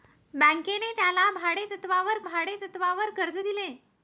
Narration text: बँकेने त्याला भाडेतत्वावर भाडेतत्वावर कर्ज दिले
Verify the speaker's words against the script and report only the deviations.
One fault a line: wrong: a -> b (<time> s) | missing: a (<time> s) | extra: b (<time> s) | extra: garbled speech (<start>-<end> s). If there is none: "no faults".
no faults